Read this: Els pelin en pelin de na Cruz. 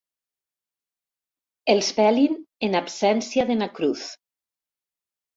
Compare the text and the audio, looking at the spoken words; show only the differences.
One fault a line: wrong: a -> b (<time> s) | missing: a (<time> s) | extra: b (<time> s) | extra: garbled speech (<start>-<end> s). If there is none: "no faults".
wrong: pelin -> absència (2.8 s)